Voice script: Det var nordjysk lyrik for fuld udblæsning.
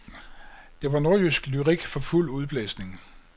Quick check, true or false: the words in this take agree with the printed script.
true